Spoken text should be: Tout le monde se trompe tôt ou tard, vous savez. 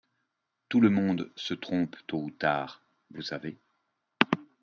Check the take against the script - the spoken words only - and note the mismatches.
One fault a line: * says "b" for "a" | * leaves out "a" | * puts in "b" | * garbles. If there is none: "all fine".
all fine